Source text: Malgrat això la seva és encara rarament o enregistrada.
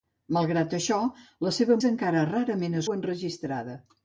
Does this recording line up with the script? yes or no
yes